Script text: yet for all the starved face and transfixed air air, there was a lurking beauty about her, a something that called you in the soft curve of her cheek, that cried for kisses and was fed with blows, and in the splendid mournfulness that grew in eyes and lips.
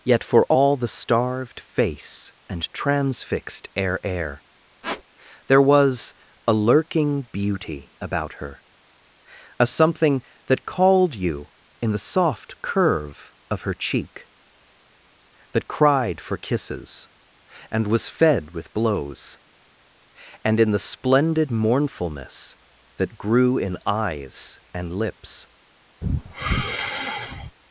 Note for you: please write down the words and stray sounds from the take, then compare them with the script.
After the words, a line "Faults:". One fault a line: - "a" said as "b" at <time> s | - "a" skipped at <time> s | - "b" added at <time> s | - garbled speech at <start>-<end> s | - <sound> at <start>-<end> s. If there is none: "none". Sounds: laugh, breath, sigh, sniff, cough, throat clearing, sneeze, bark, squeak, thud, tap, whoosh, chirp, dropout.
yet for all the starved face and transfixed air air, there was a lurking beauty about her, a something that called you in the soft curve of her cheek, that cried for kisses and was fed with blows, and in the splendid mournfulness that grew in eyes and lips.
Faults:
- squeak at 4.8-5.0 s
- sigh at 26.0-27.6 s